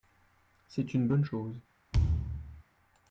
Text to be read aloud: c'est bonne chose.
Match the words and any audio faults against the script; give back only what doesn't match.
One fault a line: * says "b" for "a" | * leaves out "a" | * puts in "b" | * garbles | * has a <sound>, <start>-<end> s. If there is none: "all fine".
* puts in "une"
* has a thud, 1.9-2.6 s